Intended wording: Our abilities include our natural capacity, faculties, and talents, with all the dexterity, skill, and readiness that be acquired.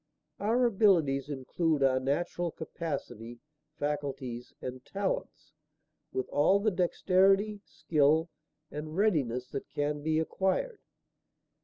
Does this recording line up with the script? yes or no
no